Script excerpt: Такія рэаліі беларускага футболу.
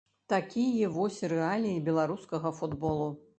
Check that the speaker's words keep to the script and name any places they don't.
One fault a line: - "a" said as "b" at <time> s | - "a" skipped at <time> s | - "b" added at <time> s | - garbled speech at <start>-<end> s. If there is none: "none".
- "вось" added at 0.9 s